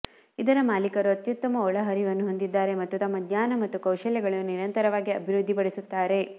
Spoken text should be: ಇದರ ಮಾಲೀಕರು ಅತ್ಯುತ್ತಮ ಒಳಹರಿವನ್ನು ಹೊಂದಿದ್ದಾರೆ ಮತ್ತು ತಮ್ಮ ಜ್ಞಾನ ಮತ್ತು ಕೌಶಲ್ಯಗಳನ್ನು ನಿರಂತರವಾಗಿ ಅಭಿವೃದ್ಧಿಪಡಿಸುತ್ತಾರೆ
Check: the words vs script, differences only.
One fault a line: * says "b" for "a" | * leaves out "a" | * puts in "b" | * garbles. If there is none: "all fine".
all fine